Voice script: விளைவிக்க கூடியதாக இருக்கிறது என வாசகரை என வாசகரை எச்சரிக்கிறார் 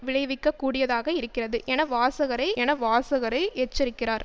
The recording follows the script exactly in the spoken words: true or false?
true